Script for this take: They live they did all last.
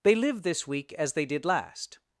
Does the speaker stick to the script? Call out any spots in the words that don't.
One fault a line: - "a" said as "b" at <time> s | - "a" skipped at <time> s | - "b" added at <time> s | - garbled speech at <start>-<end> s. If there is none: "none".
- "this week as" added at 0.4 s
- "all" skipped at 1.4 s